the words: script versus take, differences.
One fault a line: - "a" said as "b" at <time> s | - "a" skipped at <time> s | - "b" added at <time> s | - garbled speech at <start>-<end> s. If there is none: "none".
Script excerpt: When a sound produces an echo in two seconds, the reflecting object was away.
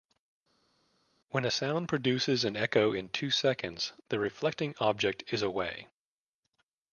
- "was" said as "is" at 5.3 s